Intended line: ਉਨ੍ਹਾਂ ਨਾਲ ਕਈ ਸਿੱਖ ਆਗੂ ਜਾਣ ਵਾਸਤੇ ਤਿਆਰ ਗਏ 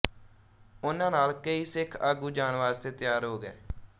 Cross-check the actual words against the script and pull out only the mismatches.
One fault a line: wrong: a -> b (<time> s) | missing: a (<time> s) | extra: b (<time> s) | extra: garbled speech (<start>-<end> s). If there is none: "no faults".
extra: ਹੋ (3.2 s)